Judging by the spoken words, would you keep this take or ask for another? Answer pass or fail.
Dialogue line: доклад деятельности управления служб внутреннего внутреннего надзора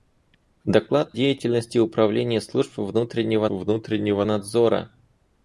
pass